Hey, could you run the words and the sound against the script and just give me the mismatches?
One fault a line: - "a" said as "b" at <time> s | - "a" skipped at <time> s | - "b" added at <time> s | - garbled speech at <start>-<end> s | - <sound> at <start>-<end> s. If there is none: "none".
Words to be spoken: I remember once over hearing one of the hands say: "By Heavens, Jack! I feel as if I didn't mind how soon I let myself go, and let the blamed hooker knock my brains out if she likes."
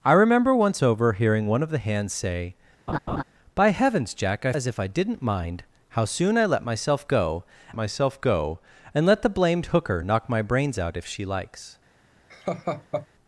- laugh at 2.9-3.2 s
- "feel" skipped at 4.5 s
- "myself go" added at 7.7 s
- laugh at 12.3-13.1 s